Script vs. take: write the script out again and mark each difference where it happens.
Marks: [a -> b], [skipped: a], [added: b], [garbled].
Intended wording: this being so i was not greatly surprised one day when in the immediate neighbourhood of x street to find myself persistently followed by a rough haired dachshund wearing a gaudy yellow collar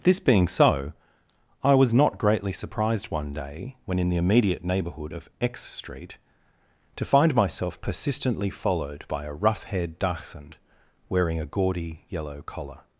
this being so i was not greatly surprised one day when in the immediate neighbourhood of x street to find myself persistently followed by a rough haired dachshund wearing a gaudy yellow collar